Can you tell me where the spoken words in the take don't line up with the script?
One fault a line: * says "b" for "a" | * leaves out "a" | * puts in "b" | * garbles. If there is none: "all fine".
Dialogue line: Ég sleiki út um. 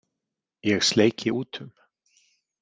all fine